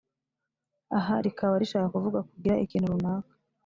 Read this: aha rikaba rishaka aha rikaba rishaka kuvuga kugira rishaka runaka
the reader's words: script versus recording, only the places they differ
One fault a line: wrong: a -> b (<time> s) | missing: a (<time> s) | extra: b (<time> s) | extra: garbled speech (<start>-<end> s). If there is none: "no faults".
missing: aha rikaba rishaka (1.9 s)
wrong: rishaka -> ikintu (2.7 s)